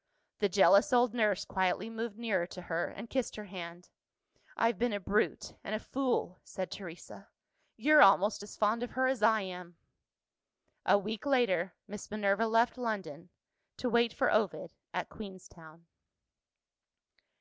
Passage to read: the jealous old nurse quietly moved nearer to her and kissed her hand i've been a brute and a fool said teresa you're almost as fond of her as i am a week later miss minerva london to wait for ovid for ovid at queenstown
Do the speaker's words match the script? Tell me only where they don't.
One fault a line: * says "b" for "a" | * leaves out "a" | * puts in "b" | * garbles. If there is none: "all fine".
* puts in "left"
* leaves out "for ovid"